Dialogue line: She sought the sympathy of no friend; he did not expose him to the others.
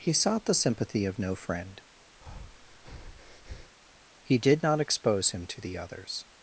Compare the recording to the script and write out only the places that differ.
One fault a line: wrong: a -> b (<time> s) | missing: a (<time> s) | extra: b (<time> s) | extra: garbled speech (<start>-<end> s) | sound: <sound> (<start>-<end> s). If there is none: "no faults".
wrong: She -> He (0.0 s)
sound: breath (2.2-3.8 s)